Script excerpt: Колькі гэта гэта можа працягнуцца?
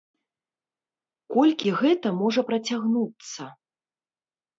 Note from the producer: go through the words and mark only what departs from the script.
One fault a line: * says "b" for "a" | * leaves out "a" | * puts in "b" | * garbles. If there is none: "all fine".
* leaves out "гэта"